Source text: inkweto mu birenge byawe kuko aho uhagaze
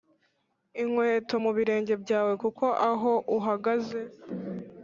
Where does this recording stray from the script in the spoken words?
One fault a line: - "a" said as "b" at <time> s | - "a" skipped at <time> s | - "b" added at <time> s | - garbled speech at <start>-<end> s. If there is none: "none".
none